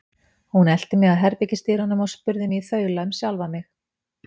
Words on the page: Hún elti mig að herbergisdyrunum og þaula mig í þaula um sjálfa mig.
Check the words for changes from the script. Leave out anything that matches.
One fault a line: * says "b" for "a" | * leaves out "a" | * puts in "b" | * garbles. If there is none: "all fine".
* says "spurði" for "þaula"